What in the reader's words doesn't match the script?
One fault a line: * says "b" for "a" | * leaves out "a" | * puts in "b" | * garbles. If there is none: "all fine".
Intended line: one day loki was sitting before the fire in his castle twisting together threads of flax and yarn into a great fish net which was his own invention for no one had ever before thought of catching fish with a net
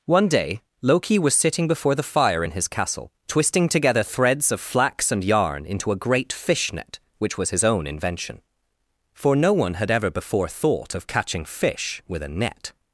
all fine